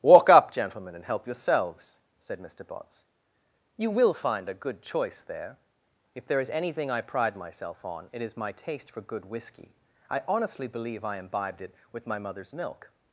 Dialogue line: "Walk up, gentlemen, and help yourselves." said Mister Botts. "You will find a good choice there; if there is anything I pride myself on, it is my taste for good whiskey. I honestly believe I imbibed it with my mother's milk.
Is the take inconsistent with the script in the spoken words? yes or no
no